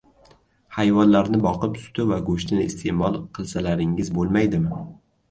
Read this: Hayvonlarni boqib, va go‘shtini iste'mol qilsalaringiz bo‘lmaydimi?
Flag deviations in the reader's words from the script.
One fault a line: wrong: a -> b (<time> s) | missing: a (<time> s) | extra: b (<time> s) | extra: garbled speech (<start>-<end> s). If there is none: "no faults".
extra: suti (1.8 s)